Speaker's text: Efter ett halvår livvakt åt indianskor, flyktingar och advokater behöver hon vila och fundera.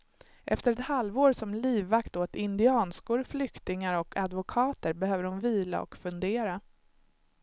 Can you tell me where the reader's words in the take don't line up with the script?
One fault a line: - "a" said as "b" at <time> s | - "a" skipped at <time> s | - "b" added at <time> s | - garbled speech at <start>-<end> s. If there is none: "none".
- "som" added at 1.3 s